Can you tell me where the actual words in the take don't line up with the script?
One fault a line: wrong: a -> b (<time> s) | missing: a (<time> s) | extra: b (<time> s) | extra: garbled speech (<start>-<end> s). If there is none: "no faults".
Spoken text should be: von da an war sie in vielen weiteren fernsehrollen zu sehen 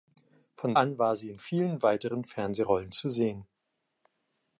missing: da (0.7 s)